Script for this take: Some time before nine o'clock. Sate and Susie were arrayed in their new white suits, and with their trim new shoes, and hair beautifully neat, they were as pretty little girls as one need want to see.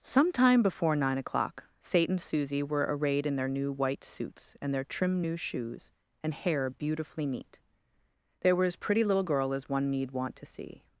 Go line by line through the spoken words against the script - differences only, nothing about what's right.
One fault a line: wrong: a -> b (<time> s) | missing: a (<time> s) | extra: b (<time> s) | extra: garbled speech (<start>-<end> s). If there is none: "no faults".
missing: with (4.7 s)
wrong: girls -> girl (9.2 s)